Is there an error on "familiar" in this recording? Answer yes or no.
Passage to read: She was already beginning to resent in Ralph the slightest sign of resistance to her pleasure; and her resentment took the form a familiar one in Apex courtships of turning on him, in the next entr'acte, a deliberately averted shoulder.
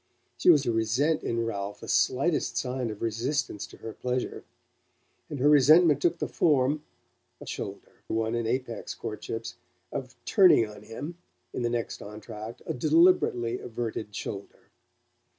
yes